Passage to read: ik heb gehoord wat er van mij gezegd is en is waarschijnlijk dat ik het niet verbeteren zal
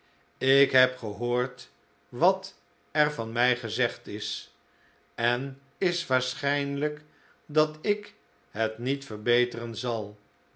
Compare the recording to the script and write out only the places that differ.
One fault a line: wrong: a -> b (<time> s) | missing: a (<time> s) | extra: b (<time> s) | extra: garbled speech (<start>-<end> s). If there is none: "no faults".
no faults